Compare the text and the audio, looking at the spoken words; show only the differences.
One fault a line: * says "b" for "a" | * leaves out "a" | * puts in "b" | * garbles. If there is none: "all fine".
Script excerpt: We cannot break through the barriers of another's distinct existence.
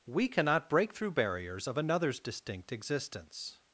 * leaves out "the"